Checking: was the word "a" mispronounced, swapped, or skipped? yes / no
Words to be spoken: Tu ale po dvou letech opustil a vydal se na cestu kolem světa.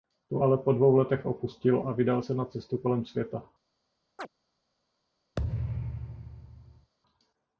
no